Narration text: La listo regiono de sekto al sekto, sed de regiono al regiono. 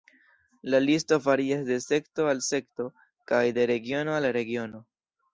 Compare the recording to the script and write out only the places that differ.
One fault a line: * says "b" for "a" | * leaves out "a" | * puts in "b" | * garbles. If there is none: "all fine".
* says "varias" for "regiono"
* says "kaj" for "sed"